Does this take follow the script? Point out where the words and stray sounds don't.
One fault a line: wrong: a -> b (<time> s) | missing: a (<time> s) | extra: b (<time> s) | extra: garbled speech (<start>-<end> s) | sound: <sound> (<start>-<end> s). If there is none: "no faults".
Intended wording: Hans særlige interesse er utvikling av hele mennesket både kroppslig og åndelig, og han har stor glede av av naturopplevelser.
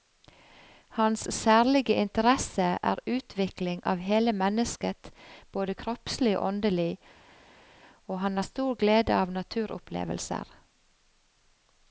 missing: av (9.3 s)